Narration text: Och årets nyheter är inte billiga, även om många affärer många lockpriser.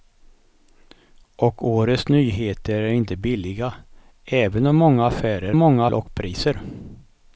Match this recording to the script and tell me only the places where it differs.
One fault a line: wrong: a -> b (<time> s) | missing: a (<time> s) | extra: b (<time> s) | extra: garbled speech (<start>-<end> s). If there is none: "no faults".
no faults